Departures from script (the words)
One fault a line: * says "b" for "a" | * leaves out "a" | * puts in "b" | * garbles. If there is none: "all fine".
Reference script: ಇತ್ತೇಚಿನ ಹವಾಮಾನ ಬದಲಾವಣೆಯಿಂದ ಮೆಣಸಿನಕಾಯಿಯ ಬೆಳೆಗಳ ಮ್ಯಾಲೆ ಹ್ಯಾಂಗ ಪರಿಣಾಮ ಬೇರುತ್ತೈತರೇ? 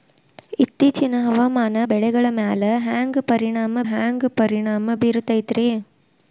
* says "ಬೆಳೆಗಳ ಮ್ಯಾಲೆ ಹ್ಯಾಂಗ ಪರಿಣಾಮ" for "ಬದಲಾವಣೆಯಿಂದ ಮೆಣಸಿನಕಾಯಿಯ ಬೆಳೆಗಳ ಮ್ಯಾಲೆ"